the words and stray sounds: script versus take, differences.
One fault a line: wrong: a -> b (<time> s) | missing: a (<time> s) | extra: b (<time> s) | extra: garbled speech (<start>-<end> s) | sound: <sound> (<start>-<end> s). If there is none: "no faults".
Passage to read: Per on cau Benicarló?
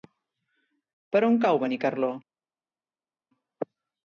no faults